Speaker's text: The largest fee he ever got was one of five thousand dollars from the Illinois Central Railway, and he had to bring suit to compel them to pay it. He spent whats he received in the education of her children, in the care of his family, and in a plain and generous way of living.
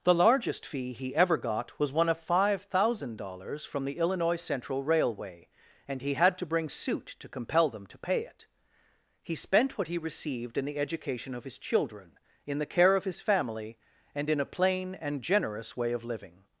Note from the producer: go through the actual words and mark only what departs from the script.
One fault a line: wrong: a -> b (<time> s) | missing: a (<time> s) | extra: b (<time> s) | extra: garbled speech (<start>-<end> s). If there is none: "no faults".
wrong: whats -> what (9.8 s)
wrong: her -> his (11.4 s)